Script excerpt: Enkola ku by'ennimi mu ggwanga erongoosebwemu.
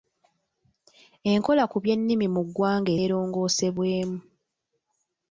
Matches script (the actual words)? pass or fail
pass